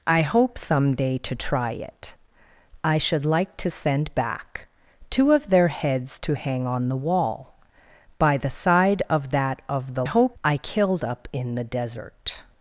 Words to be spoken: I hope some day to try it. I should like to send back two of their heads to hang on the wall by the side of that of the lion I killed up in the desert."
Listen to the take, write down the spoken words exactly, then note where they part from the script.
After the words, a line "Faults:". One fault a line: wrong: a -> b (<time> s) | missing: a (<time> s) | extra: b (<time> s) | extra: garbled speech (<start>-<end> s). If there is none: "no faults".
I hope some day to try it. I should like to send back two of their heads to hang on the wall by the side of that of the hope I killed up in the desert."
Faults:
wrong: lion -> hope (10.0 s)